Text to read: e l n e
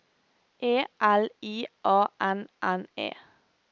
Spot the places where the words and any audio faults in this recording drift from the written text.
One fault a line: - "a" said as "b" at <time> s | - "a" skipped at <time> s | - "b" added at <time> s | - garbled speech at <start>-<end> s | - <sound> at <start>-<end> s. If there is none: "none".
- "i a n" added at 1.4 s